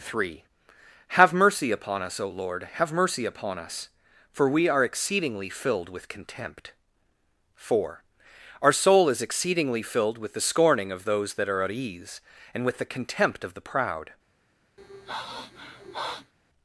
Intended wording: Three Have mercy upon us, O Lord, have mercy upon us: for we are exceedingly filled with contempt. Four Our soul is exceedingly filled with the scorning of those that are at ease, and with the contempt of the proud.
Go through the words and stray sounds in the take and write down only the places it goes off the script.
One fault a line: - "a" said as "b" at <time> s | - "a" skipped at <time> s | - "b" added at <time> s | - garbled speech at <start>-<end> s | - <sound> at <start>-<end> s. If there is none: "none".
- sniff at 14.8-16.3 s